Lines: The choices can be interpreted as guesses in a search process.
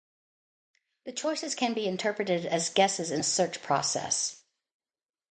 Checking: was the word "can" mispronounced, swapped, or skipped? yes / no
no